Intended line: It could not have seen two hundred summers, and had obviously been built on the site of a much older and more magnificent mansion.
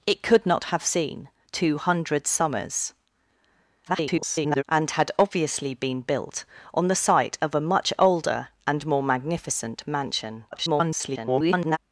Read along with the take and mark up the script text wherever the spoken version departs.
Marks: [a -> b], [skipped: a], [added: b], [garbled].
It could not have seen two hundred summers, [garbled] and had obviously been built on the site of a much older and more magnificent mansion. [garbled]